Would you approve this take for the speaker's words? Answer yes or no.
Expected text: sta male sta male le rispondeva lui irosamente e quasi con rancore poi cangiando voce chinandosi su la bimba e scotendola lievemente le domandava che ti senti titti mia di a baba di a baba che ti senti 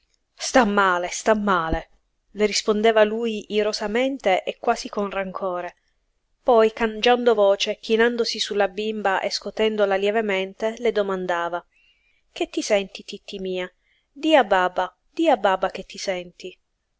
yes